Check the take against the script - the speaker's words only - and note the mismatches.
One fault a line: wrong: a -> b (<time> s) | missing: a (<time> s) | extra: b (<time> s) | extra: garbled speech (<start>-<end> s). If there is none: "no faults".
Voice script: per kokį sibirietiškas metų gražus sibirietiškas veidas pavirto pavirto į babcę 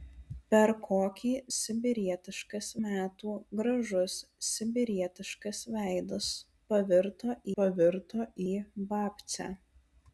no faults